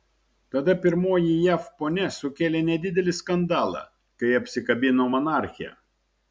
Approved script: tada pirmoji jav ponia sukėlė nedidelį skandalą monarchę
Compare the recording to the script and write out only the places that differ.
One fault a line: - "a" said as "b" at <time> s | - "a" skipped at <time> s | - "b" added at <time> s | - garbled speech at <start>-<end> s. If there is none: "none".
- "kai apsikabino" added at 4.2 s